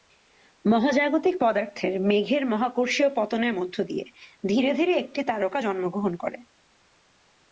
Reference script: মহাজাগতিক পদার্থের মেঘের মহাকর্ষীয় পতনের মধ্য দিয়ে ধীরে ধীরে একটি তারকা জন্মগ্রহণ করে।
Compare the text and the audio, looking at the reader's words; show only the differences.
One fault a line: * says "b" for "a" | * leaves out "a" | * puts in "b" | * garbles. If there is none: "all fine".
all fine